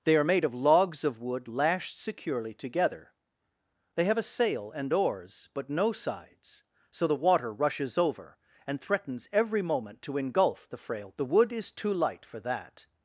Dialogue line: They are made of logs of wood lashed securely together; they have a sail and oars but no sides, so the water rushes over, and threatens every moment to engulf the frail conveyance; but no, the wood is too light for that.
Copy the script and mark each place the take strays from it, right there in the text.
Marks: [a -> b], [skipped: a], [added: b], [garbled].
They are made of logs of wood lashed securely together; they have a sail and oars but no sides, so the water rushes over, and threatens every moment to engulf the frail [skipped: conveyance; but no,] the wood is too light for that.